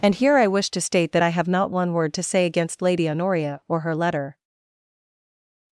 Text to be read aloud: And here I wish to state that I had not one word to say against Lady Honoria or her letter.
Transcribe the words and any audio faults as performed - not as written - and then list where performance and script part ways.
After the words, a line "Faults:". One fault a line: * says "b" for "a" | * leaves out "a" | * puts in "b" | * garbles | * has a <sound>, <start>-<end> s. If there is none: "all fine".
And here I wish to state that I have not one word to say against Lady Honoria or her letter.
Faults:
* says "have" for "had"